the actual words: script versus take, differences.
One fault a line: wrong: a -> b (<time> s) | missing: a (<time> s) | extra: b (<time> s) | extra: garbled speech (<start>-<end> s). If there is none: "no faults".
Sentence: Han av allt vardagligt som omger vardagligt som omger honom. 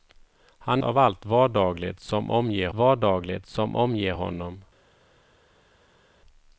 no faults